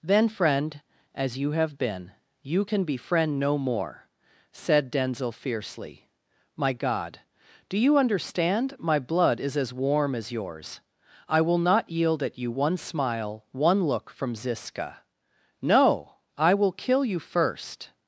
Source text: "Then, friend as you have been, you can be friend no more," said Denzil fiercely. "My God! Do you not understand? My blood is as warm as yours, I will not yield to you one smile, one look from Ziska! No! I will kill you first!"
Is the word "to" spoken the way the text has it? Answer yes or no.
no